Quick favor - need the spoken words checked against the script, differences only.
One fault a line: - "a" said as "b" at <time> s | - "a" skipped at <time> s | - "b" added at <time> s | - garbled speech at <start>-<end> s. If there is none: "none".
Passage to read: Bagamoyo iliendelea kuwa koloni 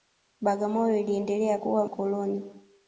none